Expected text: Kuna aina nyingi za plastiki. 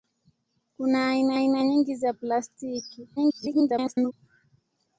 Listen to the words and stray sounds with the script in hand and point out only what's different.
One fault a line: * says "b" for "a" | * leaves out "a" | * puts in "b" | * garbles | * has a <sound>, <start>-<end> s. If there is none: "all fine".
* puts in "aina"
* garbles